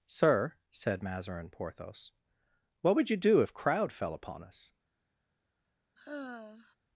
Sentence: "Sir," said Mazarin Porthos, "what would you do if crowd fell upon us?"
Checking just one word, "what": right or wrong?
right